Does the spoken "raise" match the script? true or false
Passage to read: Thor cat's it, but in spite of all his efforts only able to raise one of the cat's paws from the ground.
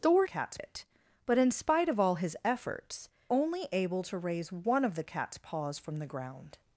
true